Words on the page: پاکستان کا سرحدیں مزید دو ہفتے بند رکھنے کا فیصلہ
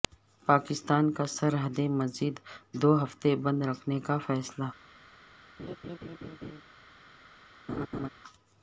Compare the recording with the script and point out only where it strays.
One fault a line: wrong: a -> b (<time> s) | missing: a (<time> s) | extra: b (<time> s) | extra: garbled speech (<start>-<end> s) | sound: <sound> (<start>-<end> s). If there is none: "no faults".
sound: laugh (5.6-6.6 s)
sound: laugh (7.7-8.1 s)